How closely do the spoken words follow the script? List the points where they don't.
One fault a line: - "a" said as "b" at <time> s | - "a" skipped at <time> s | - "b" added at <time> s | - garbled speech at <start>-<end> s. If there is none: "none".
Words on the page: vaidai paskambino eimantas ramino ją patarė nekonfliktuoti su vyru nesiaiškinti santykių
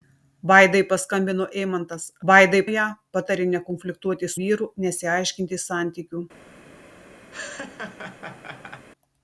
- "ramino" said as "vaidai" at 2.3 s
- "su" skipped at 4.3 s